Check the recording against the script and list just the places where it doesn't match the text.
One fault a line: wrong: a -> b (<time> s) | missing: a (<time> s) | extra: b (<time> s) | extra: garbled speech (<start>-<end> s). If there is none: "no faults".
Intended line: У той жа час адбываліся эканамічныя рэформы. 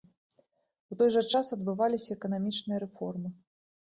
no faults